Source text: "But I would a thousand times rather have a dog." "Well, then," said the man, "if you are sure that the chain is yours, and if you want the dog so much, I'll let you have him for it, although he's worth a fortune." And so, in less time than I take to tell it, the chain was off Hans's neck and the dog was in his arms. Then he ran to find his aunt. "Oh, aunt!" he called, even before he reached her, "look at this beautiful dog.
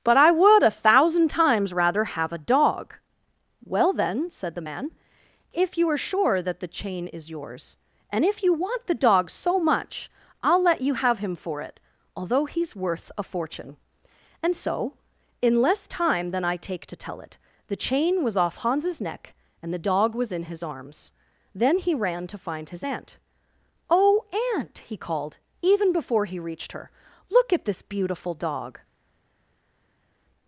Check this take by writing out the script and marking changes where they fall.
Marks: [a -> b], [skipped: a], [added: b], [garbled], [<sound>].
"But I would a thousand times rather have a dog." "Well, then," said the man, "if you are sure that the chain is yours, and if you want the dog so much, I'll let you have him for it, although he's worth a fortune." And so, in less time than I take to tell it, the chain was off Hans's neck and the dog was in his arms. Then he ran to find his aunt. "Oh, aunt!" he called, even before he reached her, "look at this beautiful dog.